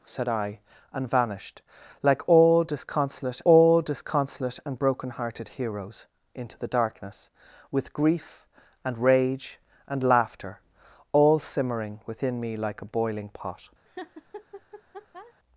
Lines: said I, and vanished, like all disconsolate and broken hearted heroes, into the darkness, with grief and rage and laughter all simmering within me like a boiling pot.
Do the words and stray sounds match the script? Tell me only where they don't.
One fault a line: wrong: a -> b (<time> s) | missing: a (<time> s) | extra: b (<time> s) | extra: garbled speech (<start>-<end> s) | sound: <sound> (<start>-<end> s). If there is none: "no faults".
extra: all disconsolate (3.4 s)
sound: laugh (13.8-15.3 s)